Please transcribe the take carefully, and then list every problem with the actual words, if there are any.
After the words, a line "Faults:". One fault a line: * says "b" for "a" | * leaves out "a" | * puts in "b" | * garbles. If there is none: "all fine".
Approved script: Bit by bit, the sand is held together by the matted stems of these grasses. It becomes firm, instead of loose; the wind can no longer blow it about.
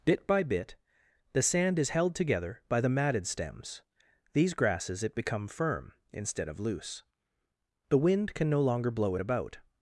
Bit by bit, the sand is held together by the matted stems these grasses. It become firm, instead of loose; the wind can no longer blow it about.
Faults:
* leaves out "of"
* says "become" for "becomes"